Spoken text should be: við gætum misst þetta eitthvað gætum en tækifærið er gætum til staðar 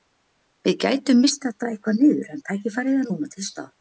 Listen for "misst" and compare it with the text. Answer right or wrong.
right